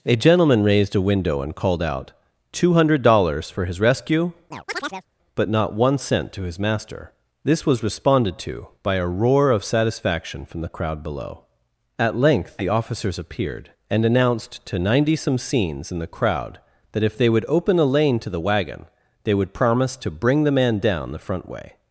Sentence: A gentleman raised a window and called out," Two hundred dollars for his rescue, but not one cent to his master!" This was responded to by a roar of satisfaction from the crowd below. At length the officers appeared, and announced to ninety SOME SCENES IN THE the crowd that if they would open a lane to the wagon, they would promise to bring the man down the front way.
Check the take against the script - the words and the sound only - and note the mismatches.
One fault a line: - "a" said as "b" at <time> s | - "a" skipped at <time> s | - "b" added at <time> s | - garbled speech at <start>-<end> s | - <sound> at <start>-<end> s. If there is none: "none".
- chirp at 4.5-5.1 s
- "the" skipped at 16.1 s